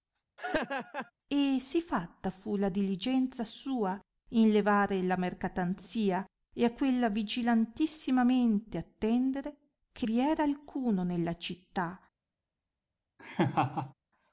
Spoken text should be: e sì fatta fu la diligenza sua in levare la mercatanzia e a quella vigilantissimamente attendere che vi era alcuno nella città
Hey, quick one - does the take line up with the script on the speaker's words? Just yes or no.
yes